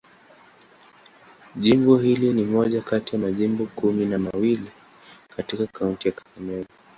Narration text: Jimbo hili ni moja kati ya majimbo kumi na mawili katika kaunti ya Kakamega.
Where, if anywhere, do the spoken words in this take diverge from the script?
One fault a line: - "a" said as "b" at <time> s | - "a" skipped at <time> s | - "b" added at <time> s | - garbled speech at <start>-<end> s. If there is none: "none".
none